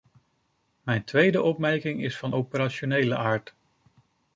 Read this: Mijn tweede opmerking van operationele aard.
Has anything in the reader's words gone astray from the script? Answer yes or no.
yes